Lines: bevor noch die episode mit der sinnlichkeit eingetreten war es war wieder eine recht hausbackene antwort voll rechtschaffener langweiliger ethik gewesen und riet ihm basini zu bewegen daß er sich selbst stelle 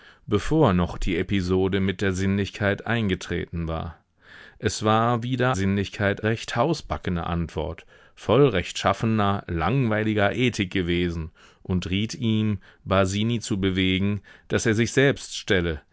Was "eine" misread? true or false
true